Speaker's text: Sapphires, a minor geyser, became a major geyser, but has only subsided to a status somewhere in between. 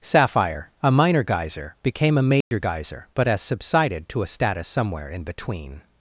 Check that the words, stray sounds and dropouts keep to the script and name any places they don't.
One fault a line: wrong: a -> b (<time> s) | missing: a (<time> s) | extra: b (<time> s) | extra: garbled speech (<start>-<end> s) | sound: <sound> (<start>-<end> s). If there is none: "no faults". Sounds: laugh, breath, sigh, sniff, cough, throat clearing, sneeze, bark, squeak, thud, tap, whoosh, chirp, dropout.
wrong: Sapphires -> Sapphire (0.0 s)
sound: dropout (2.4-2.5 s)
missing: only (3.4 s)